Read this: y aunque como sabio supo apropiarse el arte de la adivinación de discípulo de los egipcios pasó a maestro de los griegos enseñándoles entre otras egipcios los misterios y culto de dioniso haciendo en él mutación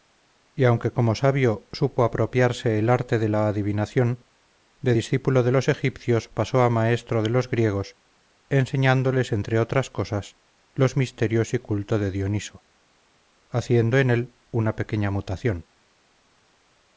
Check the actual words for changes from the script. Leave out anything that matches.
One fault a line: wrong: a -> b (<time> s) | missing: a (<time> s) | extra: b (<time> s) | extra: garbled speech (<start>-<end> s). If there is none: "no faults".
wrong: egipcios -> cosas (9.9 s)
extra: una pequeña (14.5 s)